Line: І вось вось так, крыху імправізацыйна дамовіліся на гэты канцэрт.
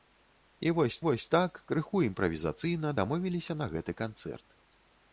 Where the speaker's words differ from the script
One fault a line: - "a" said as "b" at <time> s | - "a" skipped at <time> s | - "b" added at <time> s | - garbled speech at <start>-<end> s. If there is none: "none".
none